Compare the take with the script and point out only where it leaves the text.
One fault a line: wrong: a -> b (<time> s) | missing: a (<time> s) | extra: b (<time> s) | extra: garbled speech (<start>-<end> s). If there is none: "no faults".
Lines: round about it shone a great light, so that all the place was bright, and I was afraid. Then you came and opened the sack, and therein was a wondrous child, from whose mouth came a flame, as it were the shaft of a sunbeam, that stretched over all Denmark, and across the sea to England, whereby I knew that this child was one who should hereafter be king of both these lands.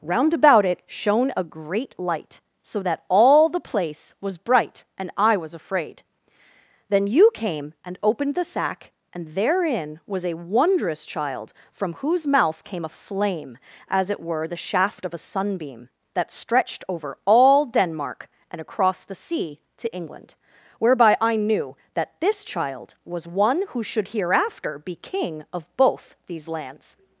no faults